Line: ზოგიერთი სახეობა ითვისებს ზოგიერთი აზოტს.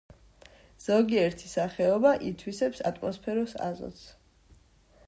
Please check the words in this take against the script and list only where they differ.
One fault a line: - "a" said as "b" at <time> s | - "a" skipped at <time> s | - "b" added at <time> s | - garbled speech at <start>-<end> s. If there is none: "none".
- "ზოგიერთი" said as "ატმოსფეროს" at 2.9 s